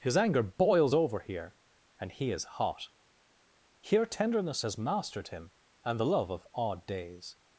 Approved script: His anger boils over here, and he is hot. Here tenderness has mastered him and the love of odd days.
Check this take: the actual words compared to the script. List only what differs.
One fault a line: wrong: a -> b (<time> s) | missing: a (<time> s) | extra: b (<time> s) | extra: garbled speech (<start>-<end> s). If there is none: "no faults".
no faults